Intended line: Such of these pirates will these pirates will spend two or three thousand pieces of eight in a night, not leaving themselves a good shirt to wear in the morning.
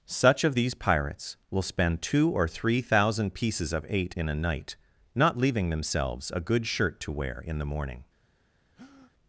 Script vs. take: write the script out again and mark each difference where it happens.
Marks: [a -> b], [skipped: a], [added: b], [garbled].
Such of these pirates will [skipped: these pirates will] spend two or three thousand pieces of eight in a night, not leaving themselves a good shirt to wear in the morning.